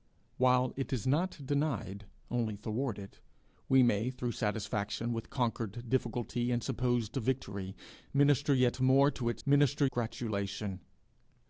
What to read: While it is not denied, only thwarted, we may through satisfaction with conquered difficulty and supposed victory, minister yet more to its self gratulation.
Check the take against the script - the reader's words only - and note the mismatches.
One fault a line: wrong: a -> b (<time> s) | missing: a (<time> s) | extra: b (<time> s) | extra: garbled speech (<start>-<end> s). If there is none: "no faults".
wrong: self -> minister (9.5 s)